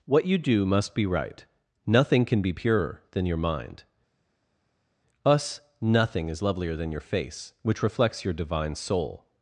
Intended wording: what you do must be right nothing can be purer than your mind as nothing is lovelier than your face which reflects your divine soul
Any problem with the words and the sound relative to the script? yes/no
yes